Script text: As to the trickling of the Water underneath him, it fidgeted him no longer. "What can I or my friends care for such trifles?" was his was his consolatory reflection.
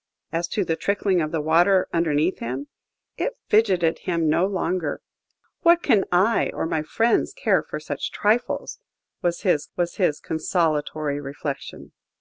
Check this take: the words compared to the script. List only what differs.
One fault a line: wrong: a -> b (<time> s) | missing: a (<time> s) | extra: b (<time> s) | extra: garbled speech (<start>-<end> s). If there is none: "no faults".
no faults